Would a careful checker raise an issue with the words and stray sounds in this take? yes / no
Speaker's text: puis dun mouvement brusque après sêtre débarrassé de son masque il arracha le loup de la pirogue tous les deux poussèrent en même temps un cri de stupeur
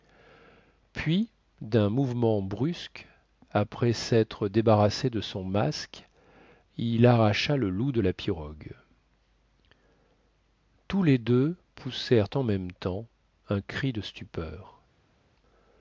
no